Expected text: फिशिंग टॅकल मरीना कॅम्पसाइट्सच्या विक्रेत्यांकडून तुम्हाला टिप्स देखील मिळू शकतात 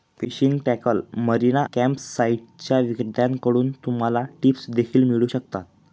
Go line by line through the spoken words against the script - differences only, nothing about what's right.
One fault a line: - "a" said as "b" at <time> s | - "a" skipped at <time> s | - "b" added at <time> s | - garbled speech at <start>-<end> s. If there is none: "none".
none